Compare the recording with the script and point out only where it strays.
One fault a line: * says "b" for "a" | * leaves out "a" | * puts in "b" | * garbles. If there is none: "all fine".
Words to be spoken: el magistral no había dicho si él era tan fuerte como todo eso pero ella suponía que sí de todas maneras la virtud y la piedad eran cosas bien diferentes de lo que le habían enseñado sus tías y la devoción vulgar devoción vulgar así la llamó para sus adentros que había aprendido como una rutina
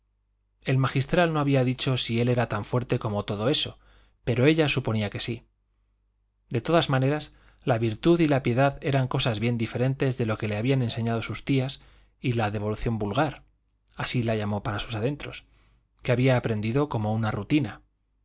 * leaves out "devoción vulgar"